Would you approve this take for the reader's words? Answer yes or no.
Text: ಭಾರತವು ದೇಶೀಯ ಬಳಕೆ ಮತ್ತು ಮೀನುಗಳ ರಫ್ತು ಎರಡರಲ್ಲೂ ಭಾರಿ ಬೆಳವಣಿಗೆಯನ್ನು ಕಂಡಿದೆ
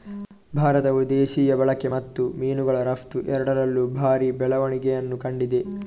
yes